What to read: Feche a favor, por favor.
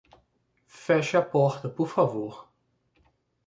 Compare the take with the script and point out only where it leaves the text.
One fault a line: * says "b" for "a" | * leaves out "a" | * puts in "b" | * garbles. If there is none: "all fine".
* says "porta" for "favor"